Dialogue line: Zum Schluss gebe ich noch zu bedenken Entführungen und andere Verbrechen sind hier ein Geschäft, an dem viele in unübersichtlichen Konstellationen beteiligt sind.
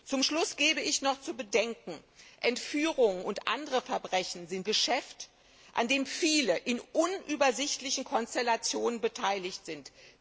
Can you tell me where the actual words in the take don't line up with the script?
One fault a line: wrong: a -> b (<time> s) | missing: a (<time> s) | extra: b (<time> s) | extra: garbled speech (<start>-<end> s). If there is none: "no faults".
missing: hier ein (4.7 s)